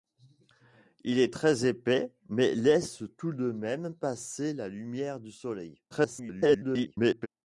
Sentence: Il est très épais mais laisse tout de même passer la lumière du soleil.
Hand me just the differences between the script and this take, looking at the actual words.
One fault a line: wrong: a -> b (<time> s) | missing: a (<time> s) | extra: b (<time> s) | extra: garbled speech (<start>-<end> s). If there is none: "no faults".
extra: garbled speech (5.9-7.3 s)